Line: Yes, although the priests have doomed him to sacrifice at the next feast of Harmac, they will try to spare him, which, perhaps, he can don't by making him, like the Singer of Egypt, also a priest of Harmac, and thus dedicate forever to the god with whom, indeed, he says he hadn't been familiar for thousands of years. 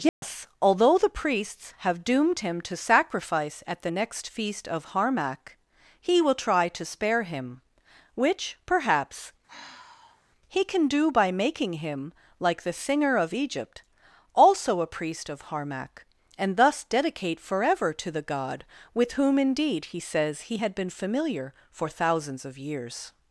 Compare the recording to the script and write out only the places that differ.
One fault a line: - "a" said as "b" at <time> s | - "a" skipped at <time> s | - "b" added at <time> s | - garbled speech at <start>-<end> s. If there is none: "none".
- "they" said as "he" at 6.0 s
- "don't" said as "do" at 10.9 s
- "hadn't" said as "had" at 20.6 s